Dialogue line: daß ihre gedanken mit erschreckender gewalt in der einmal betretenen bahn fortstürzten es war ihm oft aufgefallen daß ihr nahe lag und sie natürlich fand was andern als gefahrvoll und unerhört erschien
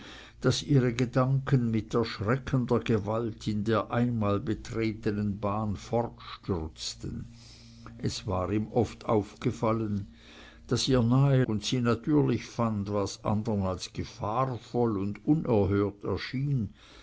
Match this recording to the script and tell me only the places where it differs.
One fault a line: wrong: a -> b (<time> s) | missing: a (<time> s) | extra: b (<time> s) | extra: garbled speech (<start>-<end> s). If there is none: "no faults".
missing: lag (11.4 s)